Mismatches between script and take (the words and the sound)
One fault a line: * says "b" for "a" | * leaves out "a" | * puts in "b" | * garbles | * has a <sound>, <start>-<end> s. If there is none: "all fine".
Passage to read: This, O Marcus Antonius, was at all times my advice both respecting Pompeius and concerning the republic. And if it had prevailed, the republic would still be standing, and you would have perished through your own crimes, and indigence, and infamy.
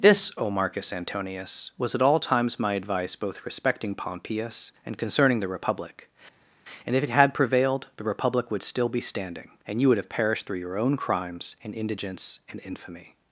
all fine